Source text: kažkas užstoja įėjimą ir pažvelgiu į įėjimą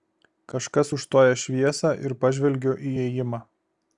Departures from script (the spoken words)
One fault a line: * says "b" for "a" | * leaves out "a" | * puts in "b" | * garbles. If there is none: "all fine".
* says "šviesą" for "įėjimą"